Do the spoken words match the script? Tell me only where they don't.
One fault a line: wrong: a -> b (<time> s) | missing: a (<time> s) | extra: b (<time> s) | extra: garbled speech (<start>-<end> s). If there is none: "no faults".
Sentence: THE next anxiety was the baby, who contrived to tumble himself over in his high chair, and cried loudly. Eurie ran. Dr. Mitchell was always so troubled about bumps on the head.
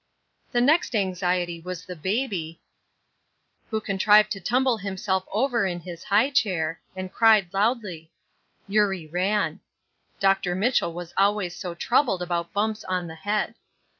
no faults